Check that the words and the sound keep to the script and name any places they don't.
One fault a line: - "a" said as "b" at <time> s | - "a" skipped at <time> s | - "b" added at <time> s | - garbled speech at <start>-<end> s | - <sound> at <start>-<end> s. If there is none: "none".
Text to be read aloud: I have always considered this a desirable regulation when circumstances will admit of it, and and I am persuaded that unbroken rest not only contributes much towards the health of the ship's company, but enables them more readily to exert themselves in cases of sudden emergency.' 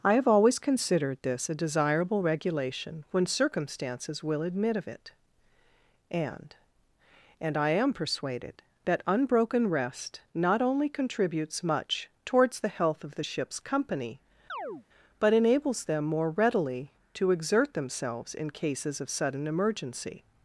- chirp at 14.5-14.8 s